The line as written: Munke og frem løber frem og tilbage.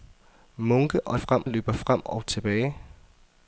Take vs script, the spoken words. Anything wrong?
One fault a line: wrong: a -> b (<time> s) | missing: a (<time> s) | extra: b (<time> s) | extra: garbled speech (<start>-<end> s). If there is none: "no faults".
no faults